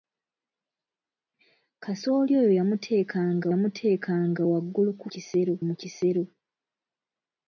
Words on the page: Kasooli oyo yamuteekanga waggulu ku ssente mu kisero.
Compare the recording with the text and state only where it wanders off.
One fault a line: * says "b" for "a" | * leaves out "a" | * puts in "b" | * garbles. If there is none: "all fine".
* puts in "yamuteekanga"
* says "kisero" for "ssente"